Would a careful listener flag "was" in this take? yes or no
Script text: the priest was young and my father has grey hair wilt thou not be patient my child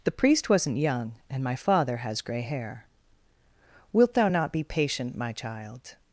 yes